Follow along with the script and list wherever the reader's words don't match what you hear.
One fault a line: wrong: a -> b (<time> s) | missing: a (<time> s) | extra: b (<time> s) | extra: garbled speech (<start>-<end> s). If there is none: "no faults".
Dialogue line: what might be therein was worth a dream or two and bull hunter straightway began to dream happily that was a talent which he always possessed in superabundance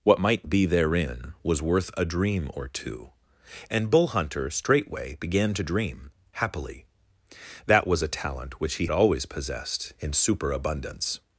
no faults